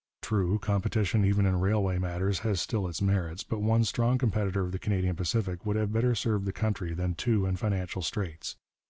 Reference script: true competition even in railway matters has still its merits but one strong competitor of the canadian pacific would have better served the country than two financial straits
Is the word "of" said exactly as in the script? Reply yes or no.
yes